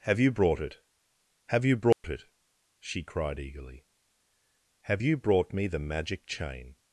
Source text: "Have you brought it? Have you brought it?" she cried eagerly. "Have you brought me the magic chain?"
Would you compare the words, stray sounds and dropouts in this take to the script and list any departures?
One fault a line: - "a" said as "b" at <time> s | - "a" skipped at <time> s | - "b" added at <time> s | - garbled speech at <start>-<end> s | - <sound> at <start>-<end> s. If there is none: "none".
- dropout at 1.9-2.0 s